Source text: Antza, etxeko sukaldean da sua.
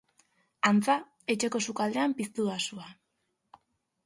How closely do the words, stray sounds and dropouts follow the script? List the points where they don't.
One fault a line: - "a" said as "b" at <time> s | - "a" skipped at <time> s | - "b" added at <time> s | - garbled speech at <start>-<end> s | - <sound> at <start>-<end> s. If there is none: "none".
- "piztu" added at 2.2 s